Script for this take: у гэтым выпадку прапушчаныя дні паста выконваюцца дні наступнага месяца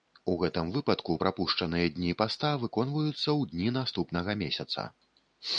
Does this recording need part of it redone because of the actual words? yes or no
yes